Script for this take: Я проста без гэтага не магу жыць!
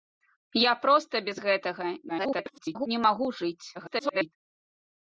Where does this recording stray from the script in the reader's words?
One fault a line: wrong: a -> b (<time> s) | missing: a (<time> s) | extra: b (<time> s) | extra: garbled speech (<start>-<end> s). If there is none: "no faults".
extra: garbled speech (2.1-2.9 s)
extra: garbled speech (3.7-4.3 s)